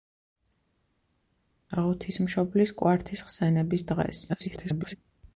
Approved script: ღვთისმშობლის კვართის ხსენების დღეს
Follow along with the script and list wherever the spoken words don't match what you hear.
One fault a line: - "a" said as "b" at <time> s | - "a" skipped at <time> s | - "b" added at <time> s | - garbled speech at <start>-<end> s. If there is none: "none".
- garbled speech at 4.3-5.0 s